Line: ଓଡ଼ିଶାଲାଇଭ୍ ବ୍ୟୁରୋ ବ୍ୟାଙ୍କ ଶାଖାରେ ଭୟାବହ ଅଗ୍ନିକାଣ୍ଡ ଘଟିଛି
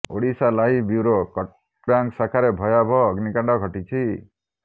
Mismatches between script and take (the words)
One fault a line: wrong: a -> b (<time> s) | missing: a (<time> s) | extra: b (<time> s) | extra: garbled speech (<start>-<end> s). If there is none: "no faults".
no faults